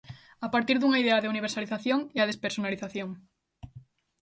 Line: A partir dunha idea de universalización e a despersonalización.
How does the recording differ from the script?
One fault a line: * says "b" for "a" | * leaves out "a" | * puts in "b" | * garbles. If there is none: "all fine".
all fine